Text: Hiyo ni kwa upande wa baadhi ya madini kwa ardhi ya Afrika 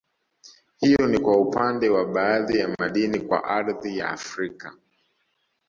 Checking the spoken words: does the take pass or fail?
pass